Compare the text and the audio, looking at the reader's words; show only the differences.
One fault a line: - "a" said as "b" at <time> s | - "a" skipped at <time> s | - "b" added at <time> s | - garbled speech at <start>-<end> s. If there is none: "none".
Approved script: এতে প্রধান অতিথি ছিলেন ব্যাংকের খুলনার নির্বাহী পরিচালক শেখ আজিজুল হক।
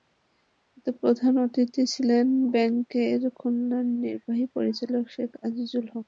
none